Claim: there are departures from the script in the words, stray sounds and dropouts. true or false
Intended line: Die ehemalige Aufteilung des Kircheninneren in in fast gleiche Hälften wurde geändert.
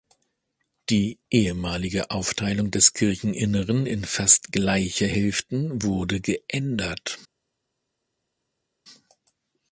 true